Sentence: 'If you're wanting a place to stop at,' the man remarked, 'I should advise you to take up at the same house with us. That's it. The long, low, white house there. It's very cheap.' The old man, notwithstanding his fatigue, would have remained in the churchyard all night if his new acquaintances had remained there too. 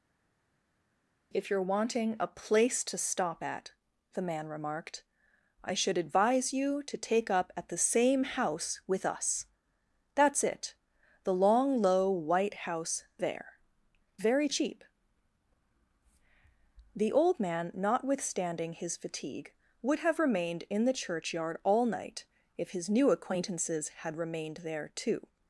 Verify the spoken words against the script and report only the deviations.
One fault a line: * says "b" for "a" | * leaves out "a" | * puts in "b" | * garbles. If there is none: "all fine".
* leaves out "It's"